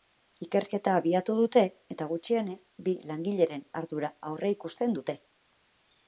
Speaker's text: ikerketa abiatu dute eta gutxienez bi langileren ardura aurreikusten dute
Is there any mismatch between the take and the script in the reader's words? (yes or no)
no